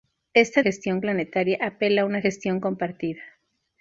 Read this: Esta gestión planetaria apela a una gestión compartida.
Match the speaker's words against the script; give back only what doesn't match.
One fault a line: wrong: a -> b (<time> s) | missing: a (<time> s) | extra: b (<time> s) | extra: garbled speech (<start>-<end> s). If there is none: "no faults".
no faults